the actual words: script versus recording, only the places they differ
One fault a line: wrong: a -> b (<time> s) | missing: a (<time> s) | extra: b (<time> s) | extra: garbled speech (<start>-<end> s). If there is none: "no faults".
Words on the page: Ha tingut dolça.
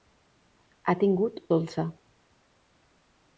no faults